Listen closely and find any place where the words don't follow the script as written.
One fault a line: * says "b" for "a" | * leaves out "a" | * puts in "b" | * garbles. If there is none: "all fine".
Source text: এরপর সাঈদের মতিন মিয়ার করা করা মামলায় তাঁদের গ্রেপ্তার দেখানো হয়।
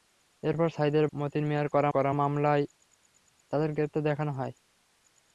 all fine